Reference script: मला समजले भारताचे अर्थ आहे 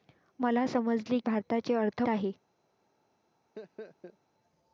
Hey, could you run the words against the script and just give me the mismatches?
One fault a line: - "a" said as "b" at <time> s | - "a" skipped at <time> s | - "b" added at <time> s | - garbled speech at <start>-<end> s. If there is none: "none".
none